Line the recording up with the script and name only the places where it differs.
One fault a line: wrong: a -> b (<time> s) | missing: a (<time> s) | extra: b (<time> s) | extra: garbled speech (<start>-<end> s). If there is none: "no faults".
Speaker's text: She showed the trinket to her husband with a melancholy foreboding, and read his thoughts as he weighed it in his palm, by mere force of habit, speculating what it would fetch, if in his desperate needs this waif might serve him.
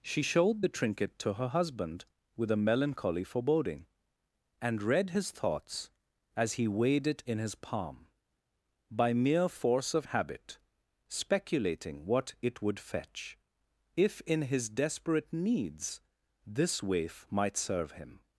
no faults